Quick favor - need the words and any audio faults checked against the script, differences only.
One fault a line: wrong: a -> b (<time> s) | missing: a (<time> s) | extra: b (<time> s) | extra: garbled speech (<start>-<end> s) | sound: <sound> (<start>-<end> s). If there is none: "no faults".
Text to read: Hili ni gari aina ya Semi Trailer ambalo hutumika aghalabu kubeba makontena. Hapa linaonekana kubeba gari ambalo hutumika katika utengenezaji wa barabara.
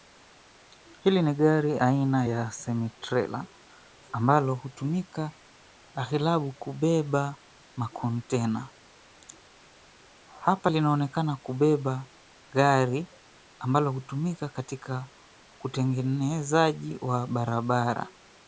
no faults